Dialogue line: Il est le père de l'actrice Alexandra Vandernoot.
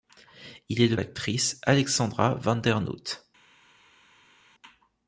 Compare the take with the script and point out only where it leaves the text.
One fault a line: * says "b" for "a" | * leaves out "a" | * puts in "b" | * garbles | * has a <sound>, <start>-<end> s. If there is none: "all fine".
* leaves out "père de"